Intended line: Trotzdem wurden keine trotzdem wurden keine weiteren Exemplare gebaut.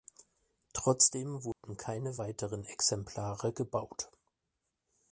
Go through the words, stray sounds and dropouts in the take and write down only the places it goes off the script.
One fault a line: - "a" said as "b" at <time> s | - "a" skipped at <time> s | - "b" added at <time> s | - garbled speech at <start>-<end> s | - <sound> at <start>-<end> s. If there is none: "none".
- dropout at 1.5-1.6 s
- "trotzdem wurden keine" skipped at 2.2 s